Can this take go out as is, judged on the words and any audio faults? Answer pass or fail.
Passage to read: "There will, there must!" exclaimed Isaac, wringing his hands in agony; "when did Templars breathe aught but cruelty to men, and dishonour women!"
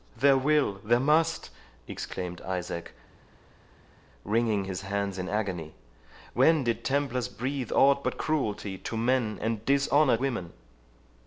pass